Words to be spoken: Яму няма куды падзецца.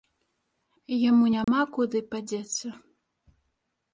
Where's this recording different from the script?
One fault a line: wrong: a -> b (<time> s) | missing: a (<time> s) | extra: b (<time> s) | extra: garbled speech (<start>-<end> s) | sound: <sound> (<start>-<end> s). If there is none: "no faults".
sound: dropout (1.4-1.5 s)